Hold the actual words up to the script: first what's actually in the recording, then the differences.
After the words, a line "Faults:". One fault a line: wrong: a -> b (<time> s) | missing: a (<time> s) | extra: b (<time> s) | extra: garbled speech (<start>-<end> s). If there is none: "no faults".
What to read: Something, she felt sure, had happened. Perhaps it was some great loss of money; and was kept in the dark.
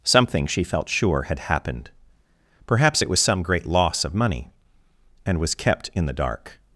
Something, she felt sure, had happened. Perhaps it was some great loss of money; and was kept in the dark.
Faults:
no faults